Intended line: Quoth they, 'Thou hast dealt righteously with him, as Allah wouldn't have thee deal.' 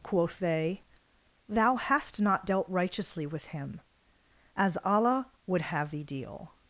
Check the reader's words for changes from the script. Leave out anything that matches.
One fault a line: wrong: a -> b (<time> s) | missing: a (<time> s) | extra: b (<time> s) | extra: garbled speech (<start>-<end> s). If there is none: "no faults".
extra: not (2.2 s)
wrong: wouldn't -> would (5.5 s)